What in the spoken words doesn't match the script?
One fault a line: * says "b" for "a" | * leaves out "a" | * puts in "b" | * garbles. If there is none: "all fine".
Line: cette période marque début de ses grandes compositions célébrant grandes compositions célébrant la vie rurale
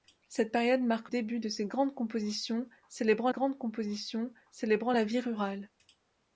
all fine